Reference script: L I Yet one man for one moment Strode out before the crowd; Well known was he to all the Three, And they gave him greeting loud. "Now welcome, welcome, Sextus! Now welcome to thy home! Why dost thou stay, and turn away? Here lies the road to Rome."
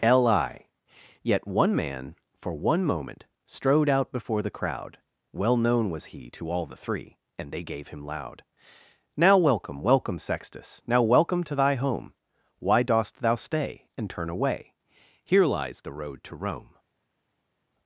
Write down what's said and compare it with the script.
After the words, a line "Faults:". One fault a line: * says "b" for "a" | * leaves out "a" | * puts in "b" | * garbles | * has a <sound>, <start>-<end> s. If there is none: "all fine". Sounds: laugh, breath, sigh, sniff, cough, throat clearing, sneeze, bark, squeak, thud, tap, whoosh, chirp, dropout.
L I Yet one man for one moment Strode out before the crowd; Well known was he to all the Three, And they gave him loud. "Now welcome, welcome, Sextus! Now welcome to thy home! Why dost thou stay, and turn away? Here lies the road to Rome."
Faults:
* leaves out "greeting"